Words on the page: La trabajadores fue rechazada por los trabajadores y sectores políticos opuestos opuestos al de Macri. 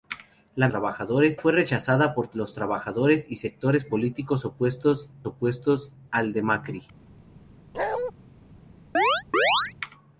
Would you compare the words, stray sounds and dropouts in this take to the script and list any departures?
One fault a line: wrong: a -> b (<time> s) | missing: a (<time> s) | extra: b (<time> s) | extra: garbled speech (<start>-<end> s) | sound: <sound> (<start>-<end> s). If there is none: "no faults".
sound: bark (7.7-8.1 s)
sound: chirp (8.9-9.7 s)